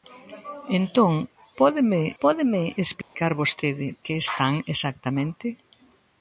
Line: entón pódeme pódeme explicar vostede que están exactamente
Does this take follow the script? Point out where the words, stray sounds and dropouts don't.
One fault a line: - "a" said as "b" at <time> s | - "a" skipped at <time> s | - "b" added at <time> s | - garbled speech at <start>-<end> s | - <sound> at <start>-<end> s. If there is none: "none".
- dropout at 3.0-3.1 s